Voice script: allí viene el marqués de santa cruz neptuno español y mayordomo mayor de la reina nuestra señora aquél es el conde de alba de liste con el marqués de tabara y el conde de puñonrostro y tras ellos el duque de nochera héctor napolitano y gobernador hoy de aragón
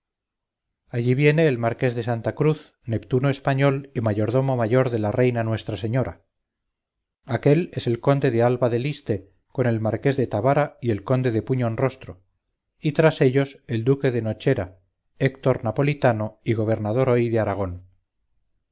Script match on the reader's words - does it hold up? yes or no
yes